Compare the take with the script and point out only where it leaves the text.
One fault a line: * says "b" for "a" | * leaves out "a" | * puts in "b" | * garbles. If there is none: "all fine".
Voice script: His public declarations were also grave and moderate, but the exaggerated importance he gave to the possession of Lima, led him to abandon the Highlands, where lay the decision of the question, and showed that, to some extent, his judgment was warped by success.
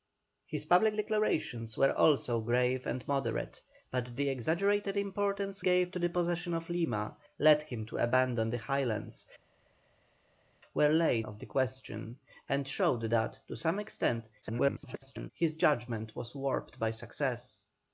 * leaves out "he"
* leaves out "the decision"
* garbles